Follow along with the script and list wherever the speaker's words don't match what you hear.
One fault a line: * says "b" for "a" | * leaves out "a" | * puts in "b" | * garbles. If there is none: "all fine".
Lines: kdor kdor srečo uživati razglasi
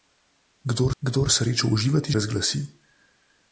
all fine